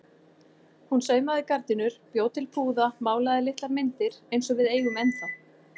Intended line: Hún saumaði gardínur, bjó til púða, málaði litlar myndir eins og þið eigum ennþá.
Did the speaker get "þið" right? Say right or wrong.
wrong